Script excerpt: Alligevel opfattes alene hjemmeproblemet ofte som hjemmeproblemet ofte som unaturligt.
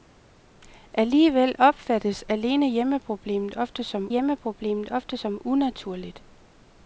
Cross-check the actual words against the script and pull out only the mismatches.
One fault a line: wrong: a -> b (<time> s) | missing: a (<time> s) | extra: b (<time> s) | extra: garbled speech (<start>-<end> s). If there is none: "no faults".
no faults